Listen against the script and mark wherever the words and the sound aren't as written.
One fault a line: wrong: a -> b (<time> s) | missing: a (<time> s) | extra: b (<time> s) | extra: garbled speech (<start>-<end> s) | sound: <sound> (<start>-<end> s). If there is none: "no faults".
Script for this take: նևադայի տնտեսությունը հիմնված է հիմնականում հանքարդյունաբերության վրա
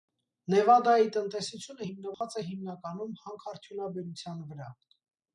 sound: dropout (2.1-2.2 s)